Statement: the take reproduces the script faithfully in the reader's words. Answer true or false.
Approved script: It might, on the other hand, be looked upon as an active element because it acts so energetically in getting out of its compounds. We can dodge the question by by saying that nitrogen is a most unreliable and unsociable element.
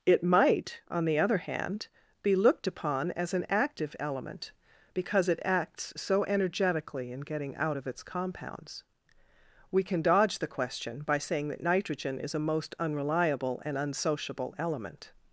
false